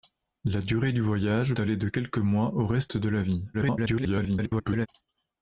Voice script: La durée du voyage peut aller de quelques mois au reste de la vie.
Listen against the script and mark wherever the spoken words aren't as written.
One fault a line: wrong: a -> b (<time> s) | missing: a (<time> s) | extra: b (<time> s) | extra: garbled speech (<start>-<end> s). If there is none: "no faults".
missing: peut (1.5 s)
extra: garbled speech (3.5-4.9 s)